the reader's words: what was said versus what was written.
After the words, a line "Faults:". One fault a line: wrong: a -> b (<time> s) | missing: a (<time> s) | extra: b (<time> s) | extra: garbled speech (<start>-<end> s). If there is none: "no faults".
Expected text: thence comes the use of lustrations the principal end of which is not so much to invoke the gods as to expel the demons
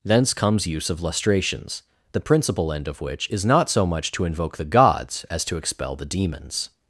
thence comes use of lustrations the principal end of which is not so much to invoke the gods as to expel the demons
Faults:
missing: the (0.7 s)